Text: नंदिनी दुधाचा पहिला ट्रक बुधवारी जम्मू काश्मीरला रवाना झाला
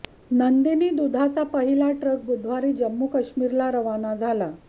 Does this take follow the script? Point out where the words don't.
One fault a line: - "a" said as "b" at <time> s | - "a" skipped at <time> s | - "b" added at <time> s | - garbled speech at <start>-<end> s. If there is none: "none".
none